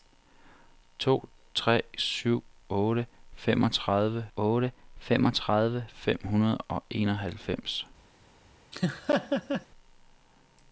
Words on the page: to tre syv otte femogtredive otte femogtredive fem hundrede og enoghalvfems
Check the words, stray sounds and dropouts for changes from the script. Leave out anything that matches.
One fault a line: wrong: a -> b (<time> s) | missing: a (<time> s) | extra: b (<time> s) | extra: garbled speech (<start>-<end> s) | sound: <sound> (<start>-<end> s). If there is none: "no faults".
sound: laugh (8.7-9.7 s)